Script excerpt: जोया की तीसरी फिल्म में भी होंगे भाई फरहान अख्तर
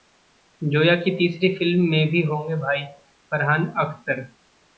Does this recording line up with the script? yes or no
yes